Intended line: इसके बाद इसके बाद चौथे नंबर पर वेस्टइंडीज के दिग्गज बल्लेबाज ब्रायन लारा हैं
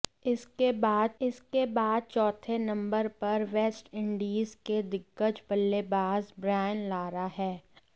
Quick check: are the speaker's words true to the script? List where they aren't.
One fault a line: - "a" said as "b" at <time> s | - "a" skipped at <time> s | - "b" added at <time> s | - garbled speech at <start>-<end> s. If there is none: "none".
none